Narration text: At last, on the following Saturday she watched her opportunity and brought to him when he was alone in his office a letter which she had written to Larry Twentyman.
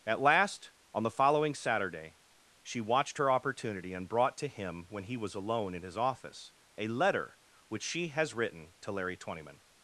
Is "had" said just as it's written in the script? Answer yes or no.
no